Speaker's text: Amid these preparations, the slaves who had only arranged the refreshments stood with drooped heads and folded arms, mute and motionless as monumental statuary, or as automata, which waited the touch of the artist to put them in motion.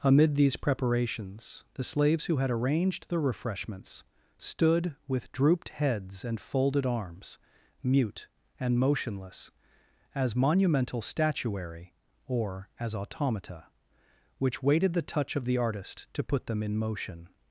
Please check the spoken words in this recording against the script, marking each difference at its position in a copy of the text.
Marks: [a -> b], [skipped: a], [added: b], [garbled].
Amid these preparations, the slaves who had [skipped: only] arranged the refreshments stood with drooped heads and folded arms, mute and motionless as monumental statuary, or as automata, which waited the touch of the artist to put them in motion.